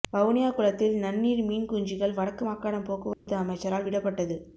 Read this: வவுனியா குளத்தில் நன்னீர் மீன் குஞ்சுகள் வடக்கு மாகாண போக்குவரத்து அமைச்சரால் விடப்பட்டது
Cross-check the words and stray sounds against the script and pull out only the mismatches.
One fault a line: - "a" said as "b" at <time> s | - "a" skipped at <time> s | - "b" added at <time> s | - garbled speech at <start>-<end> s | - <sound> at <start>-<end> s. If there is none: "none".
- dropout at 3.1-3.3 s